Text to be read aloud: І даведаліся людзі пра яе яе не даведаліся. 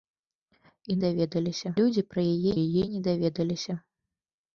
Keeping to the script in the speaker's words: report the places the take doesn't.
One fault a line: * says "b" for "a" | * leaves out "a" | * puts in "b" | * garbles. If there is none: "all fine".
all fine